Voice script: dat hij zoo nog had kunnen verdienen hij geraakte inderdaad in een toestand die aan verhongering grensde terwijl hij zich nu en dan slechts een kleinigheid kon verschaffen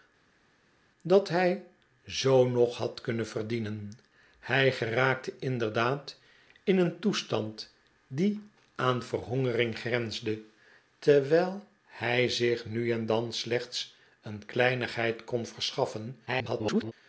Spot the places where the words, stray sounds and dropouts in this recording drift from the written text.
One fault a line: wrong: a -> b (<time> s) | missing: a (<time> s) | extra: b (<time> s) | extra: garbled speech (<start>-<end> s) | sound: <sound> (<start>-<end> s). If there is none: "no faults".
extra: garbled speech (16.3-16.9 s)